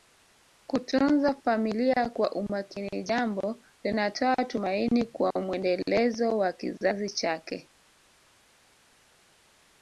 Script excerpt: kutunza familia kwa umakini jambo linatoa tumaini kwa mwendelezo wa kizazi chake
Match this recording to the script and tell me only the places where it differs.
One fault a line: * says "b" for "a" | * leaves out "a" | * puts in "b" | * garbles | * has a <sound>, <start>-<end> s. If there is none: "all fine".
all fine